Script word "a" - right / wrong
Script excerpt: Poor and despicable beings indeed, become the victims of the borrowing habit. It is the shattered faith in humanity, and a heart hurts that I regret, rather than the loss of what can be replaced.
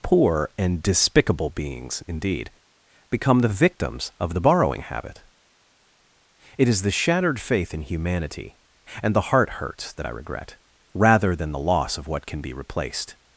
wrong